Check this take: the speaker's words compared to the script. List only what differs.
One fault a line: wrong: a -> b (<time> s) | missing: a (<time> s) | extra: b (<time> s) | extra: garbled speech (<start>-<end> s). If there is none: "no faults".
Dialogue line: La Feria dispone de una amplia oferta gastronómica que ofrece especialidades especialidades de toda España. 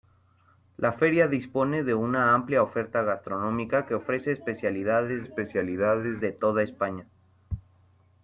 no faults